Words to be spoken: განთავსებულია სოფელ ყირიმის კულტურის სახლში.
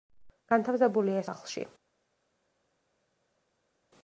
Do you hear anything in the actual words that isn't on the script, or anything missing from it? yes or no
yes